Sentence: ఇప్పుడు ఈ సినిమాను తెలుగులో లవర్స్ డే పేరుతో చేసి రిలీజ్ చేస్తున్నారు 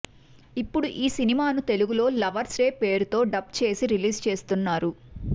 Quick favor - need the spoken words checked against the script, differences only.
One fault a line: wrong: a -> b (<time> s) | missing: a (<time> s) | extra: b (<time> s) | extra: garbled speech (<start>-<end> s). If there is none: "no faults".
extra: డబ్ (3.3 s)